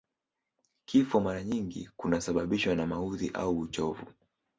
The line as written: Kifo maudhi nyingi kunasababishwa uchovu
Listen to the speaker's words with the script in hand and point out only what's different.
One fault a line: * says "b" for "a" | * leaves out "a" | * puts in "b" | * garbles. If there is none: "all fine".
* says "mara" for "maudhi"
* puts in "na maudhi au"